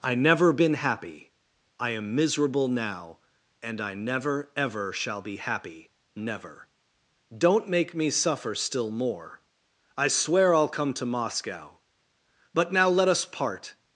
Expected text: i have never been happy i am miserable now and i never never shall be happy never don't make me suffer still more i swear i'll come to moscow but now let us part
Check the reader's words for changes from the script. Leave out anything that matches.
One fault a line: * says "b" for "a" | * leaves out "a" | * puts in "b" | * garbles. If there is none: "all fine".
* leaves out "have"
* says "ever" for "never"